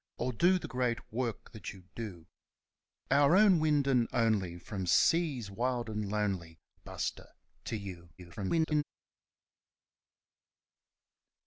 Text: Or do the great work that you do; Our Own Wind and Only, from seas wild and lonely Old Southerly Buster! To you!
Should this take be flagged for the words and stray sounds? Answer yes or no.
yes